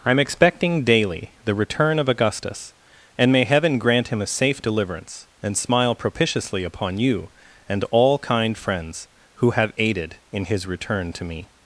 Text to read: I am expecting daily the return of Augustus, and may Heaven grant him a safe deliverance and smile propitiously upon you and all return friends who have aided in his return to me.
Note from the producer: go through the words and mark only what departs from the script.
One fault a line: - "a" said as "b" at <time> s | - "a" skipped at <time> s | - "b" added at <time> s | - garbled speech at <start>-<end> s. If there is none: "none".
- "return" said as "kind" at 8.2 s